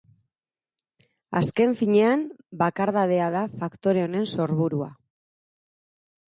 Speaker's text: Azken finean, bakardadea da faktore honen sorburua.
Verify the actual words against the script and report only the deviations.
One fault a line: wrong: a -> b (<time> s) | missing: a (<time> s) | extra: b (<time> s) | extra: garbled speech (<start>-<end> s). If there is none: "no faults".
no faults